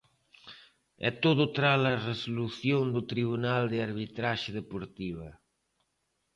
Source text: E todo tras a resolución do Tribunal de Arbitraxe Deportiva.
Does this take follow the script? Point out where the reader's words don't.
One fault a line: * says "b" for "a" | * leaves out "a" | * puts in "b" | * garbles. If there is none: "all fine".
all fine